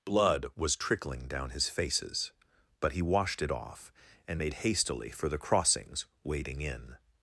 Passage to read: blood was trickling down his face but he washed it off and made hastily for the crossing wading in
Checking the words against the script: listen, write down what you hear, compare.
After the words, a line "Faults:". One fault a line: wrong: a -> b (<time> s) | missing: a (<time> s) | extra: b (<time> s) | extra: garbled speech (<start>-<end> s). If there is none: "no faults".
blood was trickling down his faces but he washed it off and made hastily for the crossings wading in
Faults:
wrong: face -> faces (1.7 s)
wrong: crossing -> crossings (5.4 s)